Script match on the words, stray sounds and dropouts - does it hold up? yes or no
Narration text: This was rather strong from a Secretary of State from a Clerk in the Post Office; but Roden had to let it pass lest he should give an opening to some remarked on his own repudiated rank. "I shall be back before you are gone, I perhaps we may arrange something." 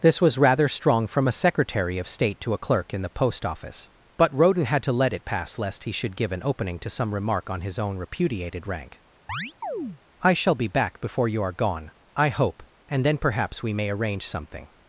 no